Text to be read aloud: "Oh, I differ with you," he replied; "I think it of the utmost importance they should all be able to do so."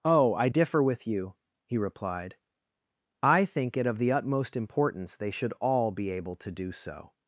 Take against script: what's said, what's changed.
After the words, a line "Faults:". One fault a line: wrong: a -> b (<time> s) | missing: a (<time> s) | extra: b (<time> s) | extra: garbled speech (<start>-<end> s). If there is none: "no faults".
"Oh, I differ with you," he replied; "I think it of the utmost importance they should all be able to do so."
Faults:
no faults